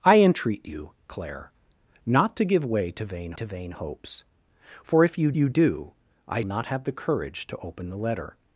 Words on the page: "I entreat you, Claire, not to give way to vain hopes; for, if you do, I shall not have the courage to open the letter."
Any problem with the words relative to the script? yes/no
yes